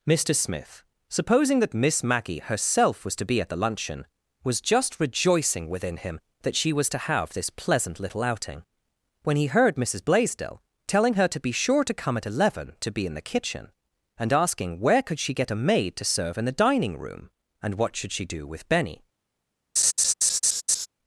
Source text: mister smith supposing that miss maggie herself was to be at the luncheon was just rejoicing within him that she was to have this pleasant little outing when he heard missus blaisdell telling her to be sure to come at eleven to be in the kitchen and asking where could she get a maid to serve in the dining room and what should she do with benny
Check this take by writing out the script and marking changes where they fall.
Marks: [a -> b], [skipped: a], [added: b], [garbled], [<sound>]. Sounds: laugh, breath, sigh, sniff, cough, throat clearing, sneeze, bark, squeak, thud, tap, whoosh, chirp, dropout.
mister smith supposing that miss maggie herself was to be at the luncheon was just rejoicing within him that she was to have this pleasant little outing when he heard missus blaisdell telling her to be sure to come at eleven to be in the kitchen and asking where could she get a maid to serve in the dining room and what should she do with benny [laugh]